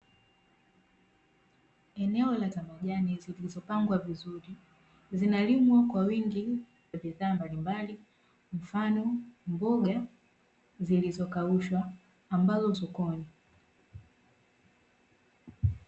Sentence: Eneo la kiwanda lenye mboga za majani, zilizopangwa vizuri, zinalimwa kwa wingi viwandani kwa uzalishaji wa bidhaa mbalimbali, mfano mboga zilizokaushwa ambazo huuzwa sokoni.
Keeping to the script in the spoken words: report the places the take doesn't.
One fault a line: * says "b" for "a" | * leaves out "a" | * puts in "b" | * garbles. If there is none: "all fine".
* leaves out "kiwanda lenye mboga"
* leaves out "viwandani kwa uzalishaji"
* leaves out "huuzwa"